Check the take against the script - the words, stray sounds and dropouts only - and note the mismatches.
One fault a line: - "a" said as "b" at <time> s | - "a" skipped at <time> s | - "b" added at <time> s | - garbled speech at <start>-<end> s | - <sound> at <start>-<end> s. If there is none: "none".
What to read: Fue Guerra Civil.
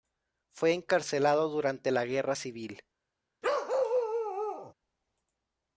- "encarcelado durante la" added at 0.7 s
- bark at 3.4-4.7 s